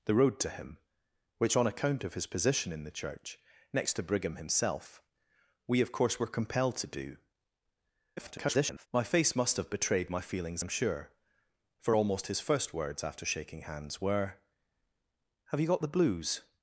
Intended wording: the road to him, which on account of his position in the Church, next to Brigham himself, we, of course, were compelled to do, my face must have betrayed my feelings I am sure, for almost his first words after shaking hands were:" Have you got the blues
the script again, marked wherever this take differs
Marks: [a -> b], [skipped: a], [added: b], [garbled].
the road to him, which on account of his position in the Church, next to Brigham himself, we, of course, were compelled to do, [garbled] my face must have betrayed my feelings [skipped: I] am sure, for almost his first words after shaking hands were:" Have you got the blues